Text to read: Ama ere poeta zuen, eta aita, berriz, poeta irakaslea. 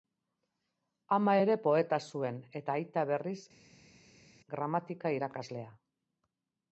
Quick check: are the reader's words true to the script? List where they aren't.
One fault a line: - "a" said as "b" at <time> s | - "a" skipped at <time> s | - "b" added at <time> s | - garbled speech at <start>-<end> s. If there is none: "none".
- "poeta" said as "gramatika" at 4.6 s